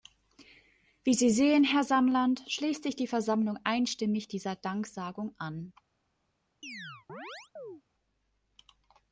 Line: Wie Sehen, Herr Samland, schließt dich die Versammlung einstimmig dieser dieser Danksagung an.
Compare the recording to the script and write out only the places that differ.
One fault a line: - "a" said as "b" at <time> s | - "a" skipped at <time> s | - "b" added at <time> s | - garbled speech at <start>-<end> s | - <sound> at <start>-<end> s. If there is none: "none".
- "Sie" added at 1.1 s
- "dich" said as "sich" at 2.8 s
- "dieser" skipped at 4.5 s
- chirp at 6.6-7.8 s